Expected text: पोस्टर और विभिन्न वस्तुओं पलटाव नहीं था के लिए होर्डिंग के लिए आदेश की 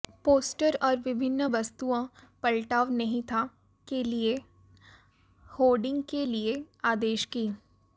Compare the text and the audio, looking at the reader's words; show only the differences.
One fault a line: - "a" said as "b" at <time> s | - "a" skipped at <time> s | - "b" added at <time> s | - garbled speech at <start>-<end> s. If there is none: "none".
none